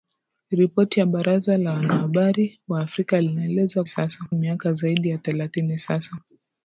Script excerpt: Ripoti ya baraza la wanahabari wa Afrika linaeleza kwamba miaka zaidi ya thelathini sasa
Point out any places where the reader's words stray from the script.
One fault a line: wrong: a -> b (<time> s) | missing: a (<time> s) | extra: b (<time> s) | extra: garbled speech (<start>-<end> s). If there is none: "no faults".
wrong: kwamba -> sasa (3.9 s)